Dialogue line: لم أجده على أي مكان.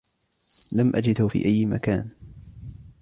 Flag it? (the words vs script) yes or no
yes